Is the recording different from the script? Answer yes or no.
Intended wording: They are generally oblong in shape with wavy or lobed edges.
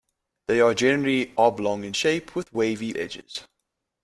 yes